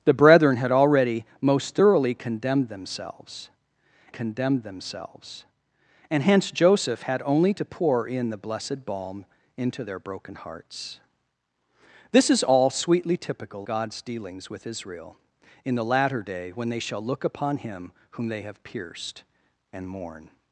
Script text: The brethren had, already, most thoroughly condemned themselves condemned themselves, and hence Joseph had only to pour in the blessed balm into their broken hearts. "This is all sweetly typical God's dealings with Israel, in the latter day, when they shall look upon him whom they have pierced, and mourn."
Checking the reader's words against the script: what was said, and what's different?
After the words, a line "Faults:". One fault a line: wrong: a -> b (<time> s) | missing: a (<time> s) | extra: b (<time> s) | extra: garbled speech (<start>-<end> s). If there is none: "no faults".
The brethren had, already, most thoroughly condemned themselves condemned themselves, and hence Joseph had only to pour in the blessed balm into their broken hearts. "This is all sweetly typical God's dealings with Israel, in the latter day, when they shall look upon him whom they have pierced, and mourn."
Faults:
no faults